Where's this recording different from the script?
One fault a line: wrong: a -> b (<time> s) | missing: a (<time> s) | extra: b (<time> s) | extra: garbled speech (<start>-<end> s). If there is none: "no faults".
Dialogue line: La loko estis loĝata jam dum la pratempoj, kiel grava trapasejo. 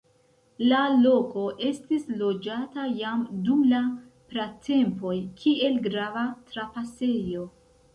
no faults